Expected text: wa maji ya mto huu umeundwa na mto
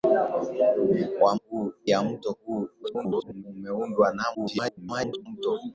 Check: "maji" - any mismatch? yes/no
yes